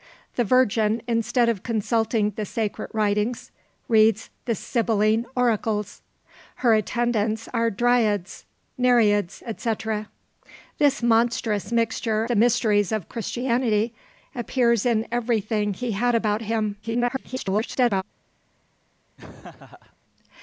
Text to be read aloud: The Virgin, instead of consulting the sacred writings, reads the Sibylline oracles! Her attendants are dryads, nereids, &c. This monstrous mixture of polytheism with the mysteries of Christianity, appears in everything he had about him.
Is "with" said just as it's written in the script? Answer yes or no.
no